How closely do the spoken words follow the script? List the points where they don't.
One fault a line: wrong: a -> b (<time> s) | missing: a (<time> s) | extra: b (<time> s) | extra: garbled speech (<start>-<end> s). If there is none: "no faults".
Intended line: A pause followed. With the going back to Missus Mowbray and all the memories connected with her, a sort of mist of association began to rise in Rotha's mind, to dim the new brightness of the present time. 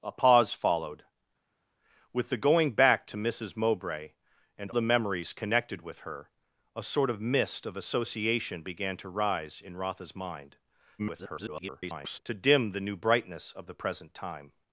missing: all (4.7 s)
extra: garbled speech (11.0-12.2 s)